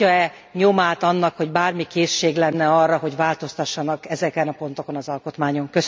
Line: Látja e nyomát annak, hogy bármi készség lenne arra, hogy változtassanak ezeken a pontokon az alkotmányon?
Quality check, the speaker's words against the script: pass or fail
pass